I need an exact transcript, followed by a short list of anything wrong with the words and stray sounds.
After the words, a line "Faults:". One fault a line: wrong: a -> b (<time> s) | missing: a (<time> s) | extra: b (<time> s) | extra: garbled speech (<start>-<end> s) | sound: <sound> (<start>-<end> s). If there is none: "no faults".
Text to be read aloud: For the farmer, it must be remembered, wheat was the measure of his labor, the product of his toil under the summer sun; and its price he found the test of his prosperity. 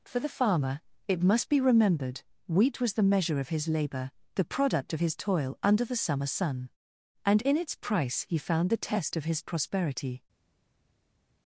For the farmer, it must be remembered, wheat was the measure of his labor, the product of his toil under the summer sun; and in its price he found the test of his prosperity.
Faults:
extra: in (7.4 s)